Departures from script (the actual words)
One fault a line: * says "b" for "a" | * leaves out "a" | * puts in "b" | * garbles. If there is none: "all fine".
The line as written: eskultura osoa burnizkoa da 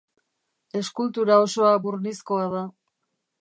all fine